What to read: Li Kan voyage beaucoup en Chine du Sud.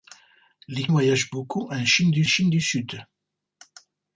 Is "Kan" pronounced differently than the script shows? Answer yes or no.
yes